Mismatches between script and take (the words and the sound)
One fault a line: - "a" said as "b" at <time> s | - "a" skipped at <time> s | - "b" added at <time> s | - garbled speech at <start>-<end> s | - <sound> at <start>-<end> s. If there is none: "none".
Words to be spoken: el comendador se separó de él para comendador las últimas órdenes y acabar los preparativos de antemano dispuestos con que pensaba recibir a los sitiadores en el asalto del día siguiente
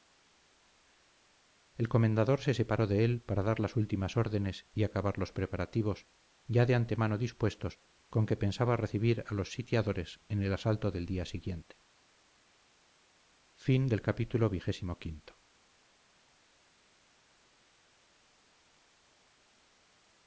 - "comendador" said as "dar" at 3.4 s
- "ya" added at 6.5 s